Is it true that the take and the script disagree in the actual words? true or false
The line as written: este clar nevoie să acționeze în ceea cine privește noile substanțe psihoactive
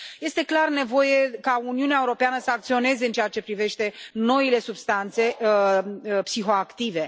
true